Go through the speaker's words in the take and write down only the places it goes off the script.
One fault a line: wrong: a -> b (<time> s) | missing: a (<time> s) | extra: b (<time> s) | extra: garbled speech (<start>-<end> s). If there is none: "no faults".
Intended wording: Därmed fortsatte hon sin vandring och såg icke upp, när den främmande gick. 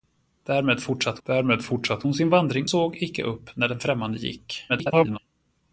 extra: därmed fortsatte (1.2 s)
missing: och (2.7 s)
extra: garbled speech (4.7-5.2 s)